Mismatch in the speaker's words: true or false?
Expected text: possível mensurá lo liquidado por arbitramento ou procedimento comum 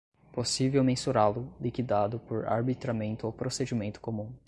false